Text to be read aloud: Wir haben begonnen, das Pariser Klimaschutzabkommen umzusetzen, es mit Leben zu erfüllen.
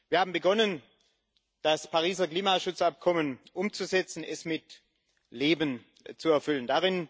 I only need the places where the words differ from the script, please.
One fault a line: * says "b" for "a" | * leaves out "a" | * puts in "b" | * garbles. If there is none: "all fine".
all fine